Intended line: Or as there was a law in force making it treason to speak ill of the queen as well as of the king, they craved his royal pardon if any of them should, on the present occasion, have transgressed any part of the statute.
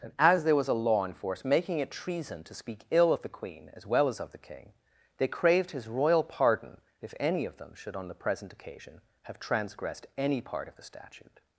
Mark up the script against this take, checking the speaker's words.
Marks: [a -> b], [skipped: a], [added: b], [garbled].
[Or -> And] as there was a law in force making it treason to speak ill of the queen as well as of the king, they craved his royal pardon if any of them should, on the present occasion, have transgressed any part of the statute.